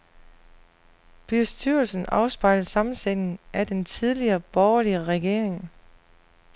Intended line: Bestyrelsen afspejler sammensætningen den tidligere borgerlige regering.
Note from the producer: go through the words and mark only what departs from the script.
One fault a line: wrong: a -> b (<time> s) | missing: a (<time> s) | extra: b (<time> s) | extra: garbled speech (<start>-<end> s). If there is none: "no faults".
extra: af (3.5 s)